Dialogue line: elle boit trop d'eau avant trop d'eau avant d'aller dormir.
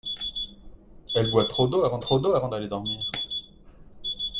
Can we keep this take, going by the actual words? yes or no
yes